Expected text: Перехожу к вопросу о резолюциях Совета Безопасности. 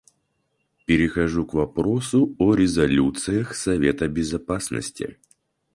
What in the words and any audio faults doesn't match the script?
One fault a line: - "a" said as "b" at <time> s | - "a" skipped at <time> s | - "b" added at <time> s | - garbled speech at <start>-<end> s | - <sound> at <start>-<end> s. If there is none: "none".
none